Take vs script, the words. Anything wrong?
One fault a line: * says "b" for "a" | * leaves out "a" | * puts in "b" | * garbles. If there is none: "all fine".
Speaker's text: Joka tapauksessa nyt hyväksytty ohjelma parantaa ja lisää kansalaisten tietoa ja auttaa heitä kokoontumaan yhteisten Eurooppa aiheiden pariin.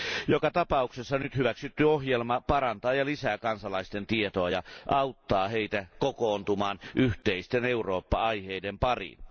all fine